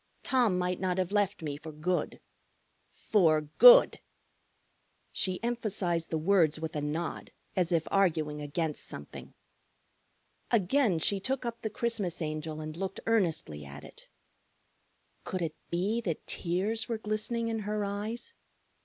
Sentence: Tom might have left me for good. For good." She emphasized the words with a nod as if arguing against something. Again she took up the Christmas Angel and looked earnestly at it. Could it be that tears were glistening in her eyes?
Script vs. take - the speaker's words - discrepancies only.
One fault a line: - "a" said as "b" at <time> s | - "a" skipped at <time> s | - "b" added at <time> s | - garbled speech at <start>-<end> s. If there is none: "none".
- "not" added at 0.8 s